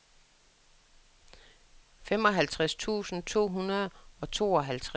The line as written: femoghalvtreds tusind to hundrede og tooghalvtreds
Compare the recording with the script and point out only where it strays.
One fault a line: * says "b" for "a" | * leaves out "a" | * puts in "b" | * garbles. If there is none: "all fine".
all fine